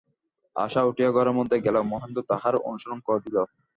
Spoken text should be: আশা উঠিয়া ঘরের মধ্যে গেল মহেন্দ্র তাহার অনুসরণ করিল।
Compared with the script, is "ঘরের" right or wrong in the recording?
right